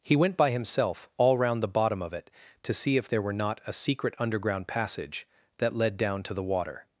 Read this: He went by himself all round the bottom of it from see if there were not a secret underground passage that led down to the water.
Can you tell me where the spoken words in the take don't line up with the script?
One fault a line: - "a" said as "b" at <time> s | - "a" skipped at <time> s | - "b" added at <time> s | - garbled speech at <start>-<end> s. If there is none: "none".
- "from" said as "to" at 2.6 s